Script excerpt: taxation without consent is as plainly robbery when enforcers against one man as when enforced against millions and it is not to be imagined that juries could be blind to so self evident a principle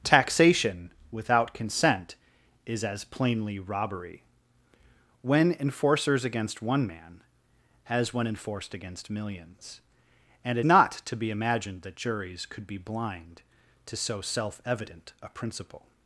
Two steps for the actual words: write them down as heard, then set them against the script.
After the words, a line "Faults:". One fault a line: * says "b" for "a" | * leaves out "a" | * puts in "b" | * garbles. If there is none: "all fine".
taxation without consent is as plainly robbery when enforcers against one man as when enforced against millions and it not to be imagined that juries could be blind to so self evident a principle
Faults:
* leaves out "is"